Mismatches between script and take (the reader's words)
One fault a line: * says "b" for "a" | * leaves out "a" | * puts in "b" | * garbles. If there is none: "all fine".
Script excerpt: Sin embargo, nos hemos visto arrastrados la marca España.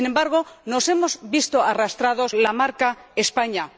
all fine